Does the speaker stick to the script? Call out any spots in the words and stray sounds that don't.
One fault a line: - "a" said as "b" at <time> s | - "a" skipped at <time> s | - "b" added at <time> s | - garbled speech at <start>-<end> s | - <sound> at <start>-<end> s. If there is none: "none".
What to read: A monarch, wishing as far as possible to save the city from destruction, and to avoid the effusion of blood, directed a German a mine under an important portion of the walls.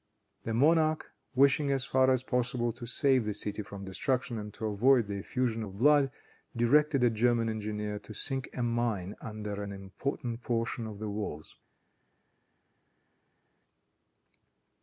- "A" said as "The" at 0.5 s
- "engineer to sink" added at 7.5 s